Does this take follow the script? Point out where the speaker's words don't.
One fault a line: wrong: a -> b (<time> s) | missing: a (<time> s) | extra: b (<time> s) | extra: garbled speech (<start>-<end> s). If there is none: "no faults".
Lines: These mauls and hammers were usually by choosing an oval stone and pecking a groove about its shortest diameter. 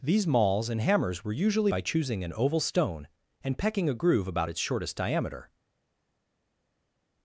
no faults